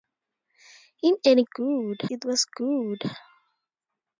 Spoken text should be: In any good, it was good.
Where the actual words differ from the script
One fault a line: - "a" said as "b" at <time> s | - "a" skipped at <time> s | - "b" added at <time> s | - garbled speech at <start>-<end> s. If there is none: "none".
none